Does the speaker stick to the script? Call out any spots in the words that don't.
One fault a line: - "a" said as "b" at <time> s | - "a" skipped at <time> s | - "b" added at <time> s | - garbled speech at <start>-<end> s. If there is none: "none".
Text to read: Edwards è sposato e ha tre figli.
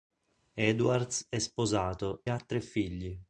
- "e" skipped at 2.2 s